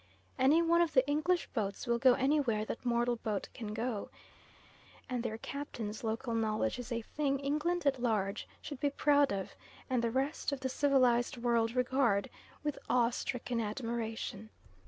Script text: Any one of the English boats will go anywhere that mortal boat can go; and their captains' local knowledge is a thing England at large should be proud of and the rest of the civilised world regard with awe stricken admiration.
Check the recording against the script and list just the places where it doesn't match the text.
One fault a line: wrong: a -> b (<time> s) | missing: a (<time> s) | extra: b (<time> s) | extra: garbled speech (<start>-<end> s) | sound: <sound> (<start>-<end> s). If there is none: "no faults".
no faults